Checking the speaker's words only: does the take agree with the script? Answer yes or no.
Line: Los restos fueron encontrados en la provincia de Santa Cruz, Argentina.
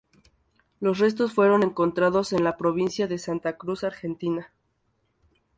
yes